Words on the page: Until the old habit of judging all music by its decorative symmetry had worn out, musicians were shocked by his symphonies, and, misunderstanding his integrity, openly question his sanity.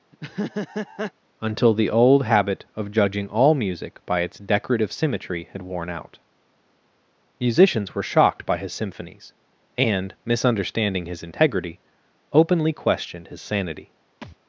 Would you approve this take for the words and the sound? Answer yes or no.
no